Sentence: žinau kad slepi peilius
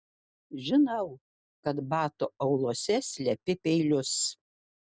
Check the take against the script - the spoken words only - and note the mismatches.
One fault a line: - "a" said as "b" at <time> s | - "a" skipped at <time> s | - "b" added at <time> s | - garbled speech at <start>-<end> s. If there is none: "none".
- "batų auluose" added at 1.9 s